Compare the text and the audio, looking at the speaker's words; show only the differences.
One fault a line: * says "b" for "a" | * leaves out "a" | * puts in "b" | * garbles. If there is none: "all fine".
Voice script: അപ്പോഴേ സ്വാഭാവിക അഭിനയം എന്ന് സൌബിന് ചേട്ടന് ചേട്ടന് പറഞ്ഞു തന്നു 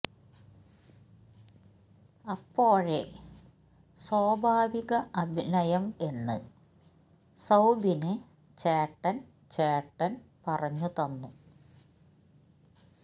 all fine